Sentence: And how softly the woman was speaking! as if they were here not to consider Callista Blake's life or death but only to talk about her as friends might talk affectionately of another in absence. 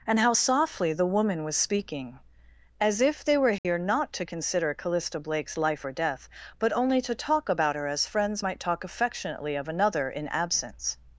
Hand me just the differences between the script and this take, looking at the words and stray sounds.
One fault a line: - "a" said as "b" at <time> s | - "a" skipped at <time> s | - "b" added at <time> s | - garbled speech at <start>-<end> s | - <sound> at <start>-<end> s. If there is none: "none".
- dropout at 3.6-3.6 s